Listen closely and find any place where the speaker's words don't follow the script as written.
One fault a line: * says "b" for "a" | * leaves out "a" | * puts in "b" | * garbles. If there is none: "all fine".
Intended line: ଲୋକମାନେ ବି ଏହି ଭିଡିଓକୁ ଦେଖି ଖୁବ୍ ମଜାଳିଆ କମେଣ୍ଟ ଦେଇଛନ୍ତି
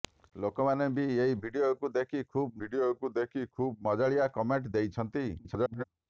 * puts in "ଭିଡିଓକୁ ଦେଖି ଖୁବ୍"
* garbles